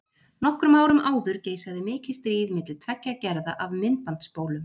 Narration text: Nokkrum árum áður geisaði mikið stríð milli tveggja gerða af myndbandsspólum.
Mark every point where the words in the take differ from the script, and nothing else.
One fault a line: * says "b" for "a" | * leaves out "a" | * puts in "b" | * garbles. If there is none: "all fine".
all fine